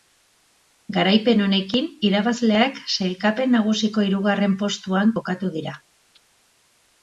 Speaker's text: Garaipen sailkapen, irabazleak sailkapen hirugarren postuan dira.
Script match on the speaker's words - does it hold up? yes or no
no